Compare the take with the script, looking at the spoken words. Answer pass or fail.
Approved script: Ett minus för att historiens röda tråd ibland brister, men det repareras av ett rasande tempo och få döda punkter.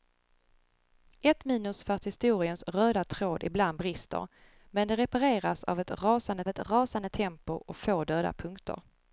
fail